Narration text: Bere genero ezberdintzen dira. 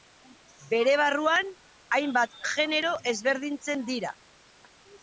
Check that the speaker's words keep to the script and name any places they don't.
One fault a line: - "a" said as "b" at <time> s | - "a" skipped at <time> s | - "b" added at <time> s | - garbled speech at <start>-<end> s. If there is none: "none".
- "barruan hainbat" added at 1.0 s